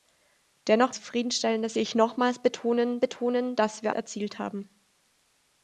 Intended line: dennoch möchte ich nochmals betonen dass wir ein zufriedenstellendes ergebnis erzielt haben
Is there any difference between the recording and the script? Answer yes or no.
yes